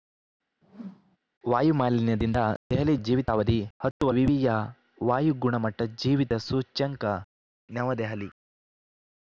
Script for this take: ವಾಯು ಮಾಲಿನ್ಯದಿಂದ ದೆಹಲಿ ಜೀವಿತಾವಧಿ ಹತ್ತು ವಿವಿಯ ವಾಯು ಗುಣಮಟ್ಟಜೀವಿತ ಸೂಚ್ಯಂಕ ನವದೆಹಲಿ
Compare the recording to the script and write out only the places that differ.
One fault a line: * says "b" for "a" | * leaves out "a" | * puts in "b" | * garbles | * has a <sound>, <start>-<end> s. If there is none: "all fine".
* has a whoosh, 0.6-1.2 s